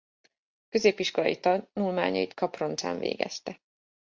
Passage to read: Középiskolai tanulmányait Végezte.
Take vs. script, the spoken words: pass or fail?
fail